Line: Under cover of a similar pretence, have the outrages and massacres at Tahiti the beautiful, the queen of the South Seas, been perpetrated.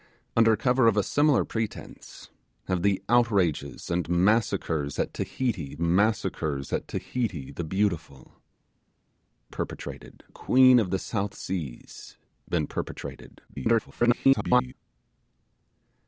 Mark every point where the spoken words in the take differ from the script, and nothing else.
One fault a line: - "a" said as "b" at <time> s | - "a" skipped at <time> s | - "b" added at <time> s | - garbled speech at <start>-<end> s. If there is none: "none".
- "massacres at Tahiti" added at 5.8 s
- "the" said as "perpetrated" at 9.5 s
- garbled speech at 13.5-14.7 s